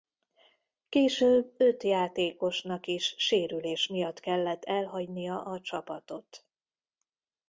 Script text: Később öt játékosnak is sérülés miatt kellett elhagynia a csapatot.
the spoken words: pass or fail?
pass